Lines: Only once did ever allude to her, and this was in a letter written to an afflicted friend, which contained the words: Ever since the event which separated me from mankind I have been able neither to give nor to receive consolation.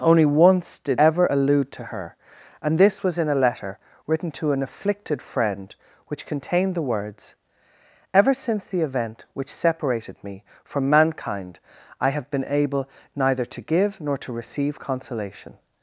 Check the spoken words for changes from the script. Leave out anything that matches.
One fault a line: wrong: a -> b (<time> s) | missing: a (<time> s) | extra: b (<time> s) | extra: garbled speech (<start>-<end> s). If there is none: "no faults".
no faults